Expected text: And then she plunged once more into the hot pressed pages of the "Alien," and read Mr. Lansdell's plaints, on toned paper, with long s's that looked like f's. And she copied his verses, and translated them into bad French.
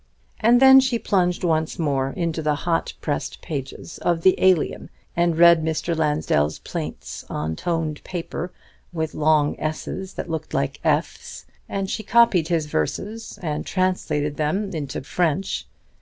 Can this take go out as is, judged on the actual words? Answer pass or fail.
fail